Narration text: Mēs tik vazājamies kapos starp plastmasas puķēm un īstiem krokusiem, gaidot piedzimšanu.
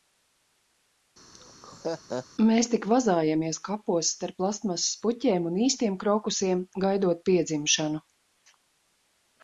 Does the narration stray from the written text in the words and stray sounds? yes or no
yes